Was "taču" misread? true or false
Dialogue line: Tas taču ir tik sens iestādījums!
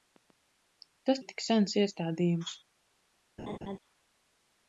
true